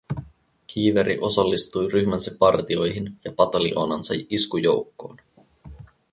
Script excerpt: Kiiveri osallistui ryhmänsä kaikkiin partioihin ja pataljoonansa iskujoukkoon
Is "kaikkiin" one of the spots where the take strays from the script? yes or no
yes